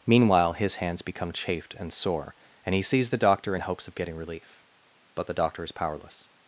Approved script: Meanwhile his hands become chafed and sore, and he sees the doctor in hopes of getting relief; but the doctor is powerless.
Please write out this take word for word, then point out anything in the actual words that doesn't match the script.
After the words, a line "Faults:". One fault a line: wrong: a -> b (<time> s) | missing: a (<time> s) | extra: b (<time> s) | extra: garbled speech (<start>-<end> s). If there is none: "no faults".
Meanwhile his hands become chafed and sore, and he sees the doctor in hopes of getting relief; but the doctor is powerless.
Faults:
no faults